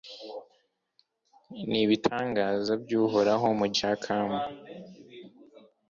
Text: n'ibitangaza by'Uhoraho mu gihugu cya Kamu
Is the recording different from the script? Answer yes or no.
yes